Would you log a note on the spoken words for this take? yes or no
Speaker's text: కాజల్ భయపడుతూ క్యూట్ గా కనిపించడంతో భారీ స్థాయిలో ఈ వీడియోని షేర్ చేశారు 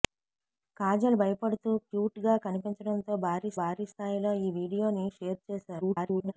yes